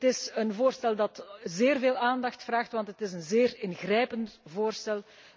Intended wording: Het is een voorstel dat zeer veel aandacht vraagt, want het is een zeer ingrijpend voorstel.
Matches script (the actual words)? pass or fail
pass